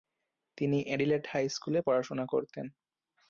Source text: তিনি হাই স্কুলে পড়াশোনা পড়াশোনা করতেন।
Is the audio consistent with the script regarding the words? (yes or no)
no